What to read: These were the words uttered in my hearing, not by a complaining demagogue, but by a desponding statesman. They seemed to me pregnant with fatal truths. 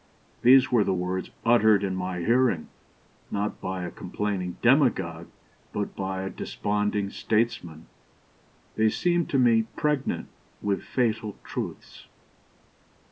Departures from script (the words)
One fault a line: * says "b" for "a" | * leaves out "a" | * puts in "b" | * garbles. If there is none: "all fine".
all fine